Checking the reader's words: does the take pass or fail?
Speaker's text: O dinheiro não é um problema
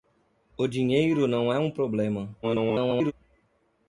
fail